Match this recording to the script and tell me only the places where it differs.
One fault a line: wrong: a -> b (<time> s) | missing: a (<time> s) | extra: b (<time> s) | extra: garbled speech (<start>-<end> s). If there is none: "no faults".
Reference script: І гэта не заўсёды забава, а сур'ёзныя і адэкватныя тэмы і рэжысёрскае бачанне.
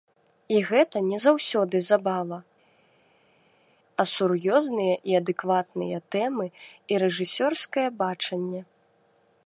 no faults